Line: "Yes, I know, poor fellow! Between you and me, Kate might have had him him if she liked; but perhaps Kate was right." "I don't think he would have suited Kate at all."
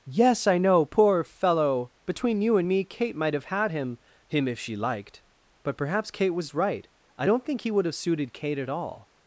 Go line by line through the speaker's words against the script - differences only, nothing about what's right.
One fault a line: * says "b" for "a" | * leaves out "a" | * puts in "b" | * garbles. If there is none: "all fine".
all fine